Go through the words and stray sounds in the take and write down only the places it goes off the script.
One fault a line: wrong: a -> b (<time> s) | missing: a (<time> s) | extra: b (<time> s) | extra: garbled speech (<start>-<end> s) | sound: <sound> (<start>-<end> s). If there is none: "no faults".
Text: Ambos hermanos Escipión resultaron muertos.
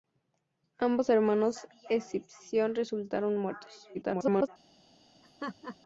extra: garbled speech (3.9-4.5 s)
sound: laugh (5.2-5.8 s)